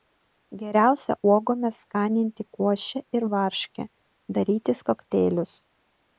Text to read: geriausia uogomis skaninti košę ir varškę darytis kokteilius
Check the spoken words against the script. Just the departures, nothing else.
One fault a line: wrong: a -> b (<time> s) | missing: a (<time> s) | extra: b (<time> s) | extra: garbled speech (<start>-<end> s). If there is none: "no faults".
no faults